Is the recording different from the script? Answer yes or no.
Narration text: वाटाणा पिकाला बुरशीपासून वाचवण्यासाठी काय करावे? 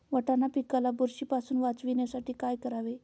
no